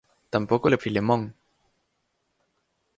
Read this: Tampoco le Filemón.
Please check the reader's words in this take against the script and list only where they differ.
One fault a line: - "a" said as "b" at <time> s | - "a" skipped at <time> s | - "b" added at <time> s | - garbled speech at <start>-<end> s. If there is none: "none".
none